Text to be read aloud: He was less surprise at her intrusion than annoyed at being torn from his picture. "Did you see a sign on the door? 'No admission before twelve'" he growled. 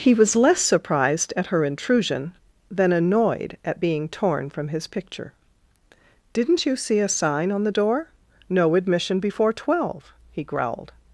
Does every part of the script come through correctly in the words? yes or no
no